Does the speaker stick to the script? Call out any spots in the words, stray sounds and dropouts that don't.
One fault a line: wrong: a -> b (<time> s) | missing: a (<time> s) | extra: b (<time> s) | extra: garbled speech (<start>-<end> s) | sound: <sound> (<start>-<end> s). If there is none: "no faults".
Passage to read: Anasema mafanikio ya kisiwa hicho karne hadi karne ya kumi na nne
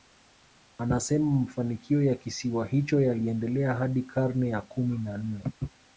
wrong: karne -> yaliendelea (3.0 s)